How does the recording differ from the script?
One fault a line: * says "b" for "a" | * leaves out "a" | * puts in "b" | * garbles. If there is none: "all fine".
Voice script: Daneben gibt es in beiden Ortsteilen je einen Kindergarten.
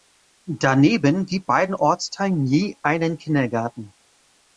* leaves out "es in"